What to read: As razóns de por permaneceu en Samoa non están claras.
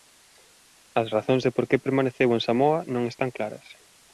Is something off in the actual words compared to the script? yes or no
yes